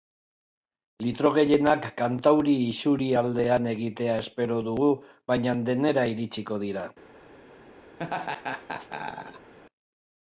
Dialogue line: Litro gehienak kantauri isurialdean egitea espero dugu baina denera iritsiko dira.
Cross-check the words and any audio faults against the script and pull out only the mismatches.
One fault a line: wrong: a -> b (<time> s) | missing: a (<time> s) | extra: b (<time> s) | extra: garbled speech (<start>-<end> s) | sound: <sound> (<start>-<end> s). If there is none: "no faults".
sound: laugh (8.0-9.5 s)